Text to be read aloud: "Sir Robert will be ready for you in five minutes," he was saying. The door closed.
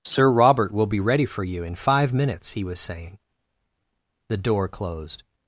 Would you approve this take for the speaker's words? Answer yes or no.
yes